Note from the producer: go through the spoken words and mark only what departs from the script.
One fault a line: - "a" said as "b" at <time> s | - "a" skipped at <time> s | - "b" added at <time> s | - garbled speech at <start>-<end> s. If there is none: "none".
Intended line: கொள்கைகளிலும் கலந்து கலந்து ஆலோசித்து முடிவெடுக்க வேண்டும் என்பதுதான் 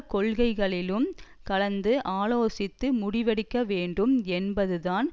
- "கலந்து" skipped at 1.9 s